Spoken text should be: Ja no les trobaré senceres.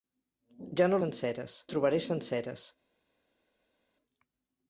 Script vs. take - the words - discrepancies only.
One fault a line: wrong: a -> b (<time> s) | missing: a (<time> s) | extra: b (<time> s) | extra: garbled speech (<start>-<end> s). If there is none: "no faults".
wrong: les -> senceres (1.0 s)